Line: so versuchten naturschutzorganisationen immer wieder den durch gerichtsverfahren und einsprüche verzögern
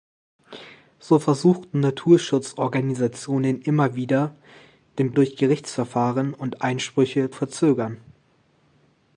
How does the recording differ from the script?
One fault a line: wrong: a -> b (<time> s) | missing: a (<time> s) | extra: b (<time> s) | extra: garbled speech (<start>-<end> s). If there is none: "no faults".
no faults